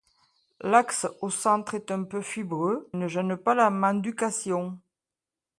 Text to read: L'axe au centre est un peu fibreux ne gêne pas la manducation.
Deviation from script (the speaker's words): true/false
false